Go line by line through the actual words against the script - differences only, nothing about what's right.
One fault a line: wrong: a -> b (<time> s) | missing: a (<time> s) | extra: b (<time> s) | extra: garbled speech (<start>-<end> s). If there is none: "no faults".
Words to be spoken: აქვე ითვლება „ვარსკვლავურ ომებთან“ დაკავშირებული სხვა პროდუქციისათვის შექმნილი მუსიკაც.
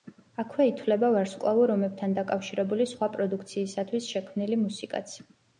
no faults